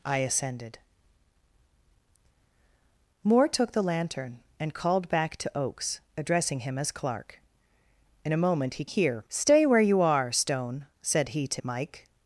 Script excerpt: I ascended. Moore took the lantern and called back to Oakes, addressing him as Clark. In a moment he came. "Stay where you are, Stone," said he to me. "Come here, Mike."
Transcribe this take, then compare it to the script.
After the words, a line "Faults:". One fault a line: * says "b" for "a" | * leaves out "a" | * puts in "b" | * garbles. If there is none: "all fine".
I ascended. Moore took the lantern and called back to Oakes, addressing him as Clark. In a moment he here. "Stay where you are, Stone," said he to Mike."
Faults:
* says "here" for "came"
* leaves out "me Come here"